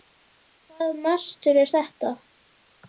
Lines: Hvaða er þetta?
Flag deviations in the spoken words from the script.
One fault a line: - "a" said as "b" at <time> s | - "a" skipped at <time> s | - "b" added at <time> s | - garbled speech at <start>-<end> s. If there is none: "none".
- "mastur" added at 1.0 s